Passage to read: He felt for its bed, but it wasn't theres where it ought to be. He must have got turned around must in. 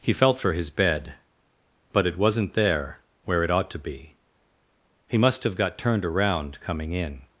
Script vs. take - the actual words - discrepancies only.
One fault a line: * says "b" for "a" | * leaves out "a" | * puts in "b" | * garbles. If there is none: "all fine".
* says "his" for "its"
* says "there" for "theres"
* says "coming" for "must"